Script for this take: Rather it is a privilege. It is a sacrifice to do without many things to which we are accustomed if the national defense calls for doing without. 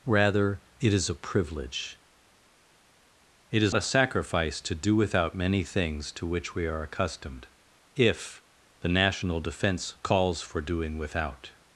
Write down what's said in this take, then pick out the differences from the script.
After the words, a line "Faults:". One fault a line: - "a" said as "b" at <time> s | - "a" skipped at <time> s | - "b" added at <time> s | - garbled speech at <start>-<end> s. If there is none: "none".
Rather it is a privilege. It is a sacrifice to do without many things to which we are accustomed if the national defense calls for doing without.
Faults:
none